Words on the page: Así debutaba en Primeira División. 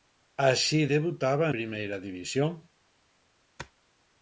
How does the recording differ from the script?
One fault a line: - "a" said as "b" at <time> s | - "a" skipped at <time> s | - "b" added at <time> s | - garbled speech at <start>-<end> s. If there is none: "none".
- "en" skipped at 1.5 s